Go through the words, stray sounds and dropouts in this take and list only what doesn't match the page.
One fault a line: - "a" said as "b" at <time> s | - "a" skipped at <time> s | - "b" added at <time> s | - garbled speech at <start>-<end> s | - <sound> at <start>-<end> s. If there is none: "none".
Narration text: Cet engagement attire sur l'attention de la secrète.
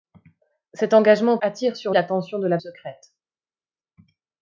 none